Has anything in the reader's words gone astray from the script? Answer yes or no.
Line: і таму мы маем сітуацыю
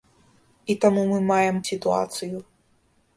no